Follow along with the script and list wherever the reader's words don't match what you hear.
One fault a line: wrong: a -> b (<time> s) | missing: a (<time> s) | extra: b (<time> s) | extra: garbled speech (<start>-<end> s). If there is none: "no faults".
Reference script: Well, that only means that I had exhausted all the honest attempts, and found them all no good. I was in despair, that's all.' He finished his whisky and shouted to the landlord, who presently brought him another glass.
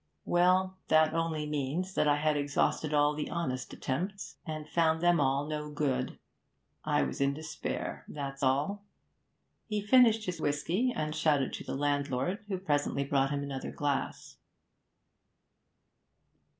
no faults